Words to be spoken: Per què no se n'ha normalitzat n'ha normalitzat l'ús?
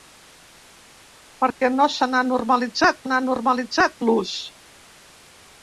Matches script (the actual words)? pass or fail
pass